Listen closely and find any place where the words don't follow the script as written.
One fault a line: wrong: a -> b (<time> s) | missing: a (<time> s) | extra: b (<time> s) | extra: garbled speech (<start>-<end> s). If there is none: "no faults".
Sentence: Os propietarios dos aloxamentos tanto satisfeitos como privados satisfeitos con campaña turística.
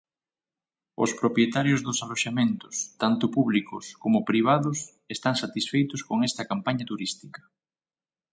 wrong: satisfeitos -> públicos (3.4 s)
extra: están (5.2 s)
extra: esta (6.3 s)